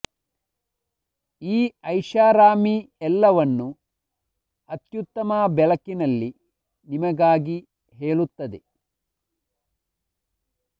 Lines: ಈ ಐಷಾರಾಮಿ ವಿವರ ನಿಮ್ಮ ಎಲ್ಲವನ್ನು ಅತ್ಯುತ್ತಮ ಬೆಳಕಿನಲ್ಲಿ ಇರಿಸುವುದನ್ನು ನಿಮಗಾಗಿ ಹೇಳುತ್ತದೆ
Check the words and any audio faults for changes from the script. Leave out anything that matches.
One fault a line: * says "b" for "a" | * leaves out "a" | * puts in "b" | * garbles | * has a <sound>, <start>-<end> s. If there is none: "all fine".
* leaves out "ವಿವರ ನಿಮ್ಮ"
* leaves out "ಇರಿಸುವುದನ್ನು"